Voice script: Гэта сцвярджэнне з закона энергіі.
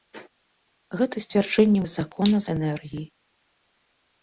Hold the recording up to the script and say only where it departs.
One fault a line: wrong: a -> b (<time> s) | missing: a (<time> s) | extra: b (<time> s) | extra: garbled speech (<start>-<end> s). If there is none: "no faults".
no faults